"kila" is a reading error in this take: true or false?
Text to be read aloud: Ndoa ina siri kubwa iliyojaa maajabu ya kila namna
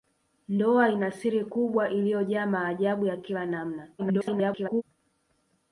false